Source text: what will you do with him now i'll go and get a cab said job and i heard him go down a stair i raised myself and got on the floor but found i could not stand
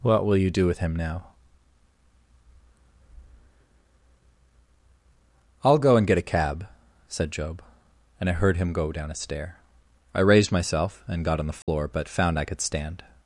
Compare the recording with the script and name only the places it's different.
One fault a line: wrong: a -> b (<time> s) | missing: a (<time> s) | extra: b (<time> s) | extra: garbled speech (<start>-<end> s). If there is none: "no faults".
missing: not (12.6 s)